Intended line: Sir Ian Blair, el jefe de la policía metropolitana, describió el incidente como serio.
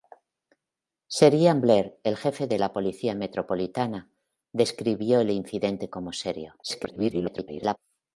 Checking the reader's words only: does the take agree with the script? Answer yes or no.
no